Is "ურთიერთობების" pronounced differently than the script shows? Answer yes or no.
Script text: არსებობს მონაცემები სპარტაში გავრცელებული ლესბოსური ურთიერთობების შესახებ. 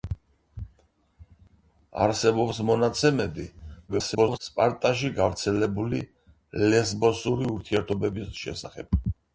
no